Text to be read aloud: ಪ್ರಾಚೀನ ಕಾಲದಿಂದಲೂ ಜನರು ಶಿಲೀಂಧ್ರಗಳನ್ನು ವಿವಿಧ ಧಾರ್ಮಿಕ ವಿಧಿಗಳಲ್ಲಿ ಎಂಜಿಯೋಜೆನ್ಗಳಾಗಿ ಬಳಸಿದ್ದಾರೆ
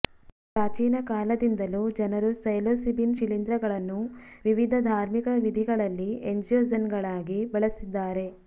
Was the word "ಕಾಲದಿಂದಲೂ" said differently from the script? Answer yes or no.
no